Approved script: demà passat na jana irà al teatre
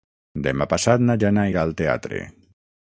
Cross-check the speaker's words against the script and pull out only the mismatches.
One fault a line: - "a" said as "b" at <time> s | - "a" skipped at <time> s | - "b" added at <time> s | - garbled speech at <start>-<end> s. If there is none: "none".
none